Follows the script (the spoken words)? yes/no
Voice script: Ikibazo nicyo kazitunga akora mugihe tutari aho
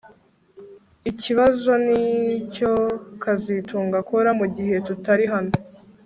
no